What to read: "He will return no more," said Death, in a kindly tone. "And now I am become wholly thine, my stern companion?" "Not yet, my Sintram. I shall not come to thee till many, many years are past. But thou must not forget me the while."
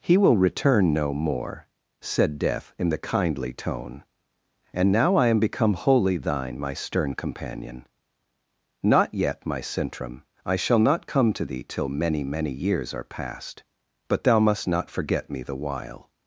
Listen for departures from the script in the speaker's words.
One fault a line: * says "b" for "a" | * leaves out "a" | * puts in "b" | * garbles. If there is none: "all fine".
* says "the" for "a"